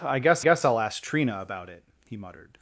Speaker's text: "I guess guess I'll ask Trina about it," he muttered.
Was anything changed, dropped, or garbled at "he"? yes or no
no